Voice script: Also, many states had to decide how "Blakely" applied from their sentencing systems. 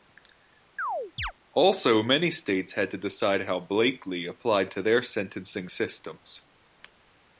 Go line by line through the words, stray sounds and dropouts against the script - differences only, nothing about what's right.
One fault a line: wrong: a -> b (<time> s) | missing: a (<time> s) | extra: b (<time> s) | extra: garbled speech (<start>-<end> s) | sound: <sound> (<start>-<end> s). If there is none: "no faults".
sound: chirp (0.8-1.3 s)
wrong: from -> to (4.7 s)